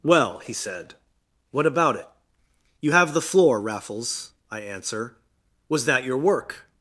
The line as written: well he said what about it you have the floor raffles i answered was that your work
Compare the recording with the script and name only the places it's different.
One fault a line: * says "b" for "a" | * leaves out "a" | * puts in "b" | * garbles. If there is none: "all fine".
* says "answer" for "answered"